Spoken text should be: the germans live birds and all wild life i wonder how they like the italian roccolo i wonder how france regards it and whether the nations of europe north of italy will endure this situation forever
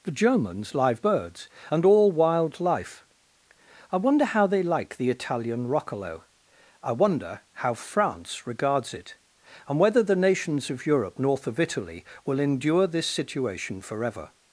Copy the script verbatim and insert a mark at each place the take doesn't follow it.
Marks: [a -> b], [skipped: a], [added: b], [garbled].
the germans live birds and all wild life i wonder how they like the italian roccolo i wonder how france regards it and whether the nations of europe north of italy will endure this situation forever